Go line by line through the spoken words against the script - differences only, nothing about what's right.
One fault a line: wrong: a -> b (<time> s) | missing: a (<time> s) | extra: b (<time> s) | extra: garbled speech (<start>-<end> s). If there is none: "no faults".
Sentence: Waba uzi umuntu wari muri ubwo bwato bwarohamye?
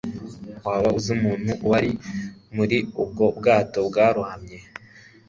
no faults